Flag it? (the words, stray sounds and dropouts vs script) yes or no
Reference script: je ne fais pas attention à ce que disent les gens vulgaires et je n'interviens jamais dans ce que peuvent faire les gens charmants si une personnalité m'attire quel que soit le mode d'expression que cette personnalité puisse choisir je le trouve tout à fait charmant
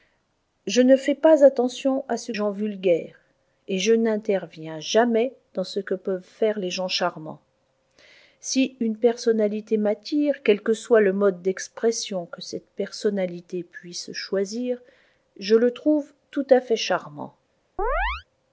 yes